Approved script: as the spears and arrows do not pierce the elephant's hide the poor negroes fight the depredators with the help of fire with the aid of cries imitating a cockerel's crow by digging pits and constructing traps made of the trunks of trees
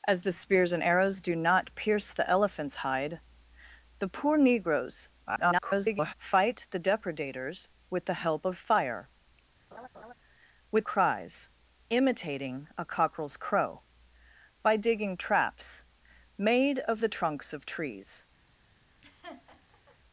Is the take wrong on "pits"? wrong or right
wrong